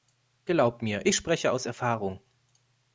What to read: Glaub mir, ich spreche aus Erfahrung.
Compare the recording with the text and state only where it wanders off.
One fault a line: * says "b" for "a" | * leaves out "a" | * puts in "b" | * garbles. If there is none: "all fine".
all fine